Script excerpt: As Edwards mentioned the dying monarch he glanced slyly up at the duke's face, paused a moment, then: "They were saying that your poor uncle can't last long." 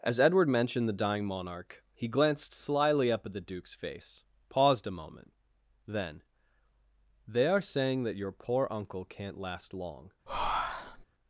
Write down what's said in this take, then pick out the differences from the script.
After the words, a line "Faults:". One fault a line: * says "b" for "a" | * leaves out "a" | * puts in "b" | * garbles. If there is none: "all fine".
As Edward mentioned the dying monarch he glanced slyly up at the duke's face, paused a moment, then: "They are saying that your poor uncle can't last long."
Faults:
* says "Edward" for "Edwards"
* says "are" for "were"